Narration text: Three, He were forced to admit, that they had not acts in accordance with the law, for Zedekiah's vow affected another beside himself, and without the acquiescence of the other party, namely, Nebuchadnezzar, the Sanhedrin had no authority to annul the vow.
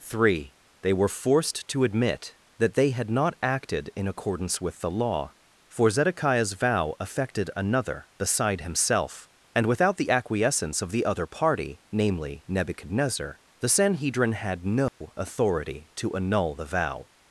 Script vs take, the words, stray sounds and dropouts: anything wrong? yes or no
yes